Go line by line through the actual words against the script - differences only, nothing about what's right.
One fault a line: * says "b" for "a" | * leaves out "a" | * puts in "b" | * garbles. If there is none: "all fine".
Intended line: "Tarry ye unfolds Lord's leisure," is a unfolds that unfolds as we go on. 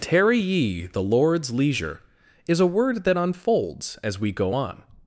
* says "the" for "unfolds"
* says "word" for "unfolds"